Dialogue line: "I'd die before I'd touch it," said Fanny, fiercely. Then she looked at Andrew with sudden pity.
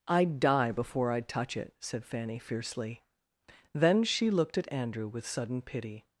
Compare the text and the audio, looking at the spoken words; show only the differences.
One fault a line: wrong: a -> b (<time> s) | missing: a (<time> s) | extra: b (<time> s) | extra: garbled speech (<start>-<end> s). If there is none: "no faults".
no faults